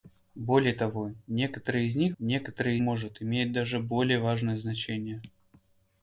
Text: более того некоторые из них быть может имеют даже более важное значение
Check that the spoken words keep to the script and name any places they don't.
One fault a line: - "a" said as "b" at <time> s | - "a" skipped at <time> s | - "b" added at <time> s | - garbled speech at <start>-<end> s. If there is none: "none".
- "быть" said as "некоторые" at 2.2 s